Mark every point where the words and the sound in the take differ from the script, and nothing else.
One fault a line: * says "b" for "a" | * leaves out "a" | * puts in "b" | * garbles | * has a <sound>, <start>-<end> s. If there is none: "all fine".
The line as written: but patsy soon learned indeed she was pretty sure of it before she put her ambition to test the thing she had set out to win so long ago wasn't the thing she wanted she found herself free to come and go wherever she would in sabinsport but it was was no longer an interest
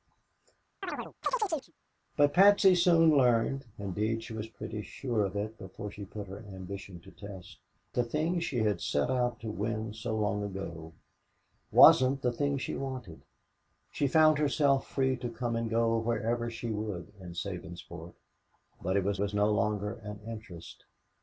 * has a chirp, 0.8-1.7 s